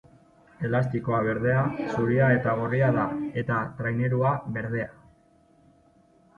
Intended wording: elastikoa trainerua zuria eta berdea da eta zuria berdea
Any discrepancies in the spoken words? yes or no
yes